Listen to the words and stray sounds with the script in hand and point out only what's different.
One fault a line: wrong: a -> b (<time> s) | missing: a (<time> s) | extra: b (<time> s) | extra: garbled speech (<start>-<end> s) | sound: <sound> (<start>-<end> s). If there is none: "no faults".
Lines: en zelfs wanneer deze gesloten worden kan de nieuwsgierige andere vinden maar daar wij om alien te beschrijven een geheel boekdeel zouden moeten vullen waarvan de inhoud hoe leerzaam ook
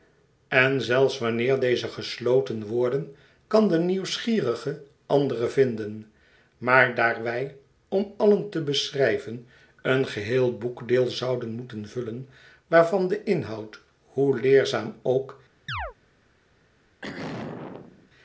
sound: chirp (15.7-15.9 s)
sound: throat clearing (17.0-18.1 s)